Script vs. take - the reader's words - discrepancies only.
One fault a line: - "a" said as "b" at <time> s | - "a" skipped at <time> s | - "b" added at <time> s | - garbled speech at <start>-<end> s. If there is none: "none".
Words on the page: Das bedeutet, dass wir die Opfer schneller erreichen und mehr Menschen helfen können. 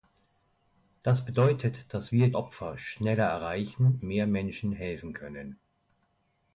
- "die" skipped at 2.3 s
- "und" skipped at 4.0 s